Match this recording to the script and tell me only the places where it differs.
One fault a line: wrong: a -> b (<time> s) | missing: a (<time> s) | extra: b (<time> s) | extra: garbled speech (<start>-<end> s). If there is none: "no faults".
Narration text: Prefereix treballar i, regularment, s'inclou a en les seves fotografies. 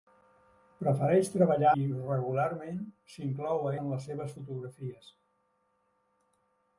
no faults